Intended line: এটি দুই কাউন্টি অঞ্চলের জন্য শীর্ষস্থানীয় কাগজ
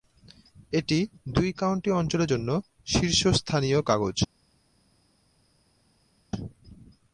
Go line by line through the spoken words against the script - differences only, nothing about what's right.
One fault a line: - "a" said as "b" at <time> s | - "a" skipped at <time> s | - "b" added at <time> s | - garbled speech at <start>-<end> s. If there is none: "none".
none